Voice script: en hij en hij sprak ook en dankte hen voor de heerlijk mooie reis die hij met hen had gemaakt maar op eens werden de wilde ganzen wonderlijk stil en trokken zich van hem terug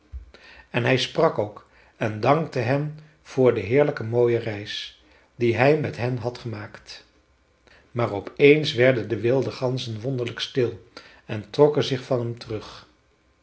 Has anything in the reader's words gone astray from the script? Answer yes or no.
yes